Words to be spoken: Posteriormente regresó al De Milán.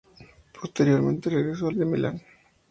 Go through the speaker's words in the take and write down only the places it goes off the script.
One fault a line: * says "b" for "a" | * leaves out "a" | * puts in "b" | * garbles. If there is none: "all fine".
all fine